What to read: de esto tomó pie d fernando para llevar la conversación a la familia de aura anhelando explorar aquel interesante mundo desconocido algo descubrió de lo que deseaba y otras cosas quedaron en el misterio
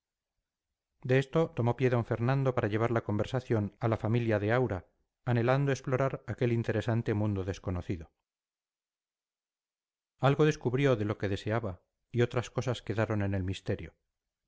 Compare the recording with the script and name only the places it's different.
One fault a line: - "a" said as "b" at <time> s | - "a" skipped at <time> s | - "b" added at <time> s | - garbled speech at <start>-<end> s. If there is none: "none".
none